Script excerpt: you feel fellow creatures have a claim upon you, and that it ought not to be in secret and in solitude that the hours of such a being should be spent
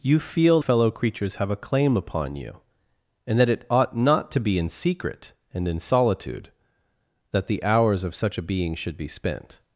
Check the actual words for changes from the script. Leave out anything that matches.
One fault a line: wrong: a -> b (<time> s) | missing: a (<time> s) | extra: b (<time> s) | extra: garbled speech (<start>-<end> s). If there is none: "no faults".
no faults